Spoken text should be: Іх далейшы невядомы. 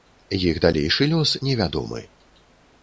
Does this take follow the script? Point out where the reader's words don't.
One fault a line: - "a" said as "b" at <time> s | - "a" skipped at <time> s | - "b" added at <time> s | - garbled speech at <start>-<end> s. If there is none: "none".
- "лёс" added at 1.1 s